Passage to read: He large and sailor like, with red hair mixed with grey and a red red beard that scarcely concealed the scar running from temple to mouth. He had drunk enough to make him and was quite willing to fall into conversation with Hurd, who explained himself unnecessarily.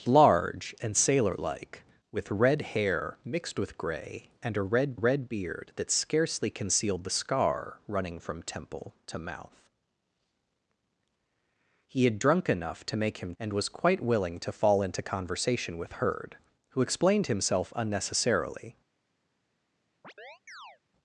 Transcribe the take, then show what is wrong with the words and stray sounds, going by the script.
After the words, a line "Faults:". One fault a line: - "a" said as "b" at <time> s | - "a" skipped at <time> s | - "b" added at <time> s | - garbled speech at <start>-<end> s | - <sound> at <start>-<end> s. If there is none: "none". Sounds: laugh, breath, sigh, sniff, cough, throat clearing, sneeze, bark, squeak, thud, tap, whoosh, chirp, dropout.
He large and sailor like, with red hair mixed with grey and a red red beard that scarcely concealed the scar running from temple to mouth. He had drunk enough to make him and was quite willing to fall into conversation with Hurd, who explained himself unnecessarily.
Faults:
- chirp at 20.0-20.8 s